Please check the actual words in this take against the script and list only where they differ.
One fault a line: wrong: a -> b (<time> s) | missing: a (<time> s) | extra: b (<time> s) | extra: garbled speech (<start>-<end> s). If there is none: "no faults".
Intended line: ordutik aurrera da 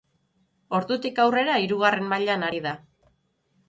extra: hirugarren mailan ari (1.7 s)